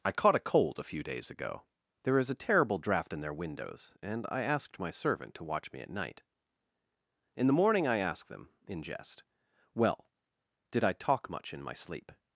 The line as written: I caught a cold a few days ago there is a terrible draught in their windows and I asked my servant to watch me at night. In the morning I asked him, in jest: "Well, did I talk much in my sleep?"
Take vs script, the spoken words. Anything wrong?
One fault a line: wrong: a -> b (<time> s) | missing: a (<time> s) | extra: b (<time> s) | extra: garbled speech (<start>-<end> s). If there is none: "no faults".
wrong: him -> them (8.3 s)